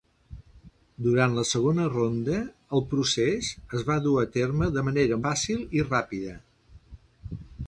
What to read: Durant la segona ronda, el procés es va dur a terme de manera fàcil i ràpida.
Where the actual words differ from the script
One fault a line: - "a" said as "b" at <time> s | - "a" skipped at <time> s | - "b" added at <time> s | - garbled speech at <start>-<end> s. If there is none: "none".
none